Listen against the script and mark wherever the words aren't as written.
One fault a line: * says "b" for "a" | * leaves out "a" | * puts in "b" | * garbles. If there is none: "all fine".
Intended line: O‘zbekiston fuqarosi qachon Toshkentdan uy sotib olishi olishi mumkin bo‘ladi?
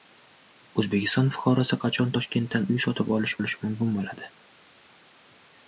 all fine